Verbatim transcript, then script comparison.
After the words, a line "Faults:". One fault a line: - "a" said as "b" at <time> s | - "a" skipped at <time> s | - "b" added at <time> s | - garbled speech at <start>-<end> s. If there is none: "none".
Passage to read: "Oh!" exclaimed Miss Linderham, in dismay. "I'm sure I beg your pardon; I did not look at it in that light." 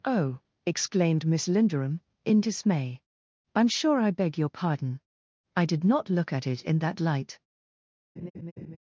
"Oh!" exclaimed Miss Linderham, in dismay. "I'm sure I beg your pardon; I did not look at it in that light."
Faults:
none